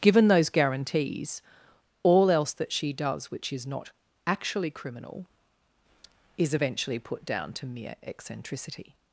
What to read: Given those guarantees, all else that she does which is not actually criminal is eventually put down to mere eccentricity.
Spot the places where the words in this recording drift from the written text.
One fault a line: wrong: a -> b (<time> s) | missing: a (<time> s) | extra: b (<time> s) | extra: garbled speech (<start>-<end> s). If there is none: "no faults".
no faults